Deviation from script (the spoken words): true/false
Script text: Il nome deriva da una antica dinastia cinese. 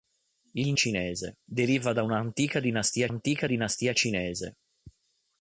true